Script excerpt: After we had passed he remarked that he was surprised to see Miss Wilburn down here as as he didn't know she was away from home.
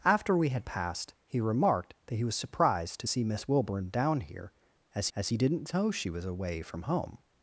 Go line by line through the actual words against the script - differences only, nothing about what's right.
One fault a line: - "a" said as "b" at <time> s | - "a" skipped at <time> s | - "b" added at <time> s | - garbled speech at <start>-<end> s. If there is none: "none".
none